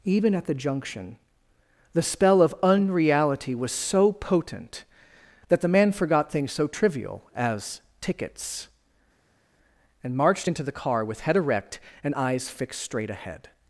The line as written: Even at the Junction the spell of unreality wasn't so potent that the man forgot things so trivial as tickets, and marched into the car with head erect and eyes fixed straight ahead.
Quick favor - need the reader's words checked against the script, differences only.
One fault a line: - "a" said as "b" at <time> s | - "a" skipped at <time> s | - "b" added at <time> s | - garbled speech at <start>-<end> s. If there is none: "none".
- "wasn't" said as "was" at 3.5 s